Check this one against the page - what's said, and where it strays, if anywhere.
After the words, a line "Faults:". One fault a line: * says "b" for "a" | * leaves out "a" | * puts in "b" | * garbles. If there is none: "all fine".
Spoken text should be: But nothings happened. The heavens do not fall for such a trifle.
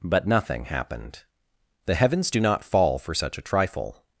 But nothing happened. The heavens do not fall for such a trifle.
Faults:
* says "nothing" for "nothings"